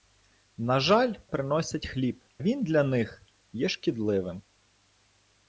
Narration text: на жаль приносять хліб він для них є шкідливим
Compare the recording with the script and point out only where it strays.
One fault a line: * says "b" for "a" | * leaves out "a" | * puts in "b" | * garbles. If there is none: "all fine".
all fine